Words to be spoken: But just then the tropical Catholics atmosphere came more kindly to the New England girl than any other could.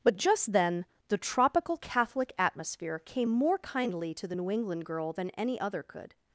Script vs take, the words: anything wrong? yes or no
yes